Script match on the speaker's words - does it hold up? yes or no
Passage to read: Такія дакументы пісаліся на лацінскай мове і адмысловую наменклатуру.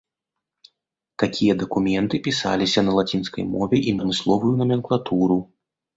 yes